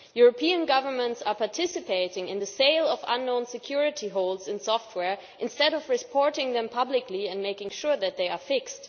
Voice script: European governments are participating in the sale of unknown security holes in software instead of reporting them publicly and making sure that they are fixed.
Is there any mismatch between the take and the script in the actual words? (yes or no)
no